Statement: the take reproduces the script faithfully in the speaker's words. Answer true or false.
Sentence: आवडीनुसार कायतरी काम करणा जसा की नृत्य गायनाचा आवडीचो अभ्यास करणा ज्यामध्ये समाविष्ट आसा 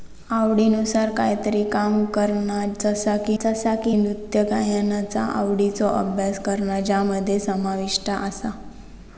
false